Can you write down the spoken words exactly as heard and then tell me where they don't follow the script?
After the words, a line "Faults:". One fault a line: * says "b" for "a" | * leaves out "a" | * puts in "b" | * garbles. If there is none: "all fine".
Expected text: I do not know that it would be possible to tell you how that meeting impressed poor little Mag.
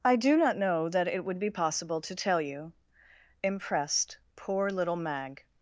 I do not know that it would be possible to tell you impressed poor little Mag.
Faults:
* leaves out "how that meeting"